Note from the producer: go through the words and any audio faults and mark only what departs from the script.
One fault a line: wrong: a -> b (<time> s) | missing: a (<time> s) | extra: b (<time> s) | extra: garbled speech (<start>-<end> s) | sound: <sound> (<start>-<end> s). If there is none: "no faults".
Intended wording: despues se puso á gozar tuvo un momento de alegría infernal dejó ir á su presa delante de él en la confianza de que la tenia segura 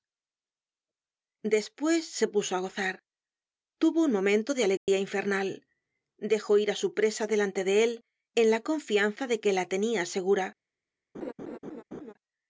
sound: dropout (4.8-4.9 s)
sound: laugh (11.1-12.1 s)